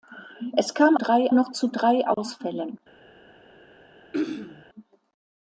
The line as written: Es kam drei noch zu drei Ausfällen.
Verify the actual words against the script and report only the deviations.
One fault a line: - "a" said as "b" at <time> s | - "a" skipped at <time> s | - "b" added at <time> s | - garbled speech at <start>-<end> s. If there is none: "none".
none